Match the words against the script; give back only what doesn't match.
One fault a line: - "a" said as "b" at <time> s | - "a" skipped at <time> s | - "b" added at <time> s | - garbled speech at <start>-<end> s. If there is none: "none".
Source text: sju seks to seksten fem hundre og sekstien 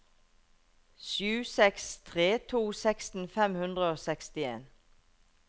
- "tre" added at 2.1 s